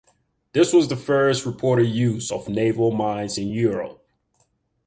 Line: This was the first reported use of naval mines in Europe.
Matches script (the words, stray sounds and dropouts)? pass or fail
pass